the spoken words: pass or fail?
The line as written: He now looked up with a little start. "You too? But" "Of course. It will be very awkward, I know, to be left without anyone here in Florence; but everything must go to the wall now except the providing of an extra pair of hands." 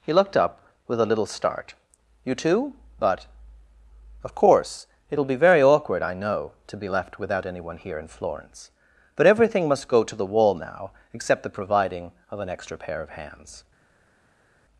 fail